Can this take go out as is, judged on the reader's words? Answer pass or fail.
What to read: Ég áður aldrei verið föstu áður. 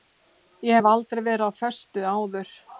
fail